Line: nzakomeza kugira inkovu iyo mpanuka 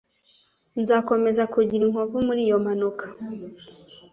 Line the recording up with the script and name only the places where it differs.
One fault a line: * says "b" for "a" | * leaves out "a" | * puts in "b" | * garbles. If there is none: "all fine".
* puts in "muri"